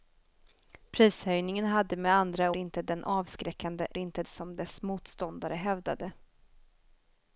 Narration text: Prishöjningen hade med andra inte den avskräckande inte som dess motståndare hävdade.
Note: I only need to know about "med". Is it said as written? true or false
true